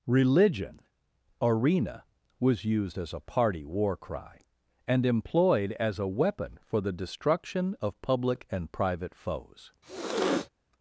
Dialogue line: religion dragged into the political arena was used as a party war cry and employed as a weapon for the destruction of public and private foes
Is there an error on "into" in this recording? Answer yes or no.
yes